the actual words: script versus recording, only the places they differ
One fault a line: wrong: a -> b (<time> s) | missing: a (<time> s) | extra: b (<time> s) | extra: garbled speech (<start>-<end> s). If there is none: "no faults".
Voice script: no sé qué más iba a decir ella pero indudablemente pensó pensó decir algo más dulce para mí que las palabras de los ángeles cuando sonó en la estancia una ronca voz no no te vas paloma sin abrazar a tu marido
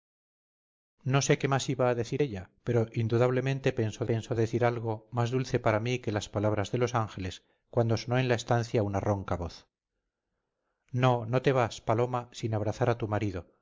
no faults